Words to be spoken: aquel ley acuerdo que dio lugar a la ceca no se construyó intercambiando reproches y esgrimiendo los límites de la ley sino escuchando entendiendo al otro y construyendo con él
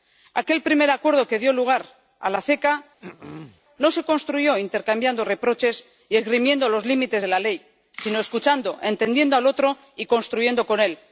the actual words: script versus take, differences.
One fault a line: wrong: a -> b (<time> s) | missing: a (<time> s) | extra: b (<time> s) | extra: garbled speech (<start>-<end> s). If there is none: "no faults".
wrong: ley -> primer (0.6 s)